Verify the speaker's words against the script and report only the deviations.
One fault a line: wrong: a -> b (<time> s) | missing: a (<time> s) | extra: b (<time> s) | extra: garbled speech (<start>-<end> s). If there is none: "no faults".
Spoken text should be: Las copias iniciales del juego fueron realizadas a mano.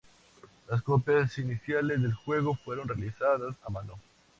no faults